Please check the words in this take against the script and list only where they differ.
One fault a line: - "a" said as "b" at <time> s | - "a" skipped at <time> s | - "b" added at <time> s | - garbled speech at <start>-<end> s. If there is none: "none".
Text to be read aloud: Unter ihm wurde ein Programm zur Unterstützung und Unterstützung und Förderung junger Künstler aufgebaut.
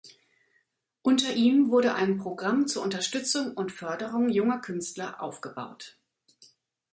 - "Unterstützung und" skipped at 3.7 s